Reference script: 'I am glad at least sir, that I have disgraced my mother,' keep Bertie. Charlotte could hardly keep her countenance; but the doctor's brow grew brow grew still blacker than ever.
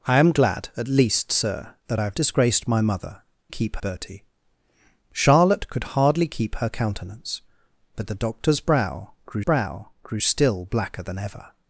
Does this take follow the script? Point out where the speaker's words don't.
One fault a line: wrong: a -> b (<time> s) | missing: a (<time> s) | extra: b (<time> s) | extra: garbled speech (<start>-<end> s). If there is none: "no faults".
no faults